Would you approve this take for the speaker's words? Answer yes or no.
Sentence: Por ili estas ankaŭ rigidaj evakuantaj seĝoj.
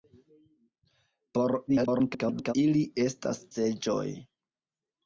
no